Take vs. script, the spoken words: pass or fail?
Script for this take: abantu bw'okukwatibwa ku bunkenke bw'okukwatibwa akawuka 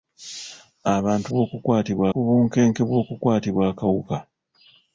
pass